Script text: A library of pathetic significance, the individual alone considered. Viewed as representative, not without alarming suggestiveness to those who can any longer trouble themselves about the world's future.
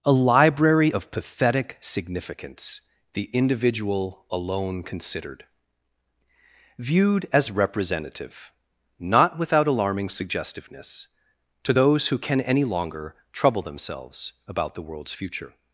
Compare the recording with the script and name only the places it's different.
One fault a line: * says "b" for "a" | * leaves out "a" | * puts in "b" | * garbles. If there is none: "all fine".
all fine